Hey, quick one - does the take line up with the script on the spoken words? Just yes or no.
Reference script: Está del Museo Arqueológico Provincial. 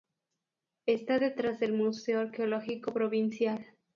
no